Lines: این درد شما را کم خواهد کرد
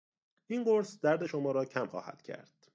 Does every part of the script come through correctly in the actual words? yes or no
no